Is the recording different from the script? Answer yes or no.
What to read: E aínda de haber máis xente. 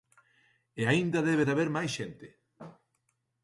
yes